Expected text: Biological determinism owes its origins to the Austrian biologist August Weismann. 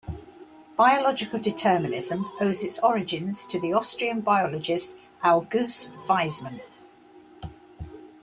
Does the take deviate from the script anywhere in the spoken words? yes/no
no